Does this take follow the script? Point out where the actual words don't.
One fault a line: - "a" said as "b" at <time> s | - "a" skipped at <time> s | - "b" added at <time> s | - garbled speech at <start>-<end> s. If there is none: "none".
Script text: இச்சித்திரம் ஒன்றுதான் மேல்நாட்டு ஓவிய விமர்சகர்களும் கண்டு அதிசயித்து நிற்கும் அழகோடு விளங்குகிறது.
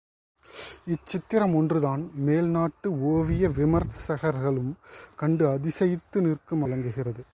- "அழகோடு" skipped at 6.6 s